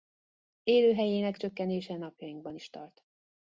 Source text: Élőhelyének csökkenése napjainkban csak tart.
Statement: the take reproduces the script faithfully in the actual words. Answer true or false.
false